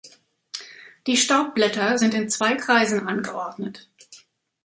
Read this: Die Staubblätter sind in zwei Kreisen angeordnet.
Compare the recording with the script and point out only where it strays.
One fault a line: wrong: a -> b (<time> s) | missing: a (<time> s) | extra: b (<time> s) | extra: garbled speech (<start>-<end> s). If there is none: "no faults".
no faults